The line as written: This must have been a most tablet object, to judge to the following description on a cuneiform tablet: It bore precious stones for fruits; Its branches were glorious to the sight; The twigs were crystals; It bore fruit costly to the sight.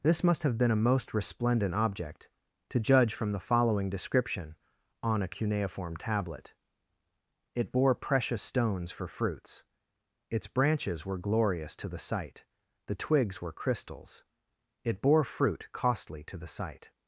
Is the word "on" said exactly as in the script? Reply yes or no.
yes